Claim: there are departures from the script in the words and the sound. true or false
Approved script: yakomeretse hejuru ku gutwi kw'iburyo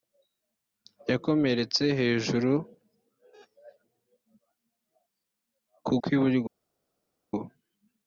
true